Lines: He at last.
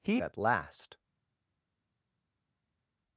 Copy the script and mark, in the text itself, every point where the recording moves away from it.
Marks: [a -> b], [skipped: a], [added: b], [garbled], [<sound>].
He at last.